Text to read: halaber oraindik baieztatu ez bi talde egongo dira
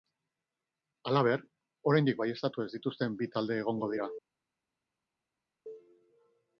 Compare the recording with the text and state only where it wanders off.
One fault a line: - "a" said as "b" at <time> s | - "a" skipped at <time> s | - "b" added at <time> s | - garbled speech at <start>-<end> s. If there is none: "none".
- "dituzten" added at 2.8 s